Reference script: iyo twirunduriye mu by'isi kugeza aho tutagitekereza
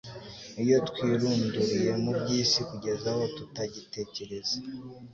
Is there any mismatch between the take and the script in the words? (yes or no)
no